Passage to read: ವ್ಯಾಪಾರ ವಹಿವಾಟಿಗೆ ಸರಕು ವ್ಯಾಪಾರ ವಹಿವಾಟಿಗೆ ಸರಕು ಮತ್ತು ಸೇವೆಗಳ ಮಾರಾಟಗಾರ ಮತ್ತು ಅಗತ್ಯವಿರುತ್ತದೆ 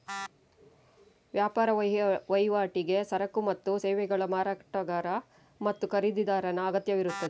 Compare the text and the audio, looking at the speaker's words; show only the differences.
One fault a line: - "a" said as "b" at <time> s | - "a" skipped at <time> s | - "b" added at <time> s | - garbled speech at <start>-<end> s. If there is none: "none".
- "ವ್ಯಾಪಾರ ವಹಿವಾಟಿಗೆ ಸರಕು" skipped at 3.4 s
- "ಖರೀದಿದಾರನ" added at 5.9 s